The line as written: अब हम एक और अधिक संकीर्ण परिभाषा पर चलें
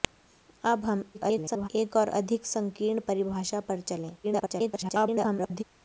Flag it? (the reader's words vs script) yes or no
yes